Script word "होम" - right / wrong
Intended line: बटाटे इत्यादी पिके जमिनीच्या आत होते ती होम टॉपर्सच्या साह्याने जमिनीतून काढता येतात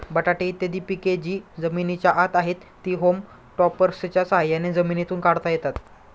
right